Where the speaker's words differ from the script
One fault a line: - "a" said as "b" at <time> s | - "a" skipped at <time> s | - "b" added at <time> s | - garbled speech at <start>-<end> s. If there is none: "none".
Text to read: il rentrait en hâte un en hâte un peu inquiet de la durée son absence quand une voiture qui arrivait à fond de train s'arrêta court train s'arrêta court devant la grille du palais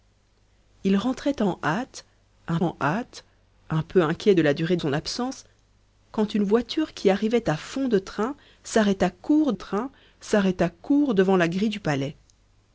none